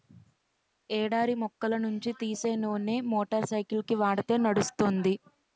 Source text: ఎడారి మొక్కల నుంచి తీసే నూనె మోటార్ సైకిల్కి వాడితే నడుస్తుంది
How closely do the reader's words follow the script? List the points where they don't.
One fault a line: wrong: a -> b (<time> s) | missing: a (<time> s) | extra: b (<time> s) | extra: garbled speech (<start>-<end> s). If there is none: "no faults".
no faults